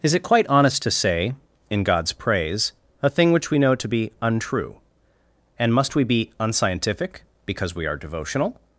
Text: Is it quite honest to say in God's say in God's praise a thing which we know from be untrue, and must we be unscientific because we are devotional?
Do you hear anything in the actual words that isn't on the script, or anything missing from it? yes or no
yes